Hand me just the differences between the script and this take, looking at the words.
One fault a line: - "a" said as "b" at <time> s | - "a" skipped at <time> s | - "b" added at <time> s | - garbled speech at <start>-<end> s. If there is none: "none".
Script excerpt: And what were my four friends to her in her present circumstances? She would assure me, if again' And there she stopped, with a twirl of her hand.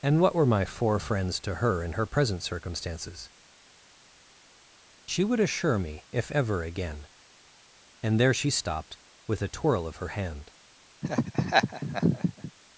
- "ever" added at 6.3 s